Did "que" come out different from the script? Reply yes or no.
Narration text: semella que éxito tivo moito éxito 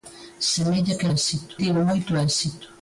no